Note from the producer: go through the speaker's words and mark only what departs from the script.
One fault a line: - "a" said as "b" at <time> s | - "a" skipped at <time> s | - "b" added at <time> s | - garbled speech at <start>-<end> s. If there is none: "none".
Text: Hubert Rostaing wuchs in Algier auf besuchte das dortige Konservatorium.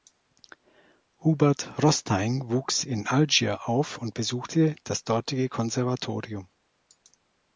- "und" added at 4.0 s